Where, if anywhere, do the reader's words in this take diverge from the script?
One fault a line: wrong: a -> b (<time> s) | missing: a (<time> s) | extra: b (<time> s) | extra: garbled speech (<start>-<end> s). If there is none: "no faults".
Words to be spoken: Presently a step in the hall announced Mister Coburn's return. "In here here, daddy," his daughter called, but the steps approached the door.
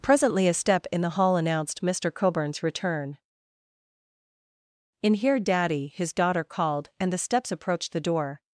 missing: here (5.4 s)
wrong: but -> and (7.0 s)